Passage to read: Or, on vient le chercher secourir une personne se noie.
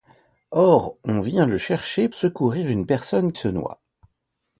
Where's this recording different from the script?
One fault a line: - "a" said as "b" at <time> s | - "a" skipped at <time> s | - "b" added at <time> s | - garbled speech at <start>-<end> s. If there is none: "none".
none